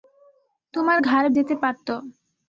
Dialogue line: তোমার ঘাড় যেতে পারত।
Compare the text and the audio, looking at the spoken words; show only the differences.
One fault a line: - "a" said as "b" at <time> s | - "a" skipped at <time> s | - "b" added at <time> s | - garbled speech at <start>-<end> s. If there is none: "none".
none